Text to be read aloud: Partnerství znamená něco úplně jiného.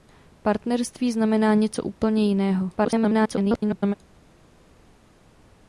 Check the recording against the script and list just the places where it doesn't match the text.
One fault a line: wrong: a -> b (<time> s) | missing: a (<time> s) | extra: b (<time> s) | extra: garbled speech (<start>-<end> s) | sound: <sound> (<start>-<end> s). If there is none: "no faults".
extra: garbled speech (2.8-3.9 s)